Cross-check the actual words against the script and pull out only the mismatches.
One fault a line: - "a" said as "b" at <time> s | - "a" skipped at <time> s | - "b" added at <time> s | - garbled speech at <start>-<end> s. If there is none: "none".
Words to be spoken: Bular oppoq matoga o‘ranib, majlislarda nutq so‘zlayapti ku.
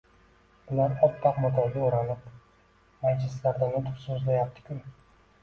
none